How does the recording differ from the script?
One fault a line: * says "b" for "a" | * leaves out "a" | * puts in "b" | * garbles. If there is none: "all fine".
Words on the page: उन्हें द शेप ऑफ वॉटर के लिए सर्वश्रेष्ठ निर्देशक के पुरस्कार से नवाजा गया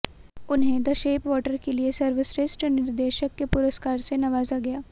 * leaves out "ऑफ"